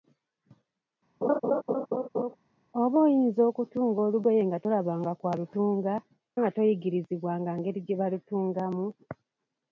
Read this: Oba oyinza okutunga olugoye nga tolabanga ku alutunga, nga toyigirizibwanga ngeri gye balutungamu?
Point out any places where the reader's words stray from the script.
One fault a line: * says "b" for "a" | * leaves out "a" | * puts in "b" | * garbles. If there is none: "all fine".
all fine